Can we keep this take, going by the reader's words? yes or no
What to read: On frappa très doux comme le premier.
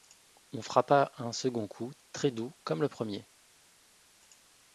no